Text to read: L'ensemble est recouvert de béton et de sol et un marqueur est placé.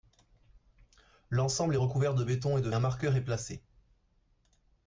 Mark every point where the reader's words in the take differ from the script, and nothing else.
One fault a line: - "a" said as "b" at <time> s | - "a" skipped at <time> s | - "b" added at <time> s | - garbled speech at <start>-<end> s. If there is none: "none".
- "sol et" skipped at 2.7 s